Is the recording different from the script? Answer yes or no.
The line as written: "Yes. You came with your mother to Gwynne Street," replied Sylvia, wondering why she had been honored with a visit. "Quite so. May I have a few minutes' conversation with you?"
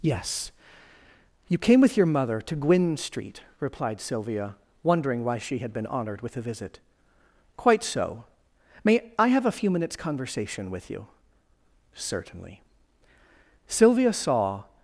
yes